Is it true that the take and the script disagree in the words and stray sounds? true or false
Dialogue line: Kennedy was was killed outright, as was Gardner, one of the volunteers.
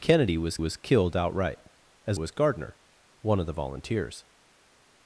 false